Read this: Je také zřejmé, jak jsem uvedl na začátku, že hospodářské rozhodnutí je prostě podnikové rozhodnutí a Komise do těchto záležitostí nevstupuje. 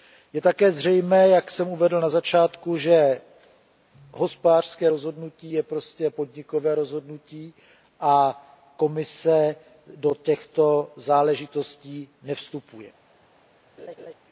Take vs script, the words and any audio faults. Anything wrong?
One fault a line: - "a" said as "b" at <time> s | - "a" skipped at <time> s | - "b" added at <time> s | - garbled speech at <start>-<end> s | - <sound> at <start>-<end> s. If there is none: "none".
- laugh at 13.8-14.1 s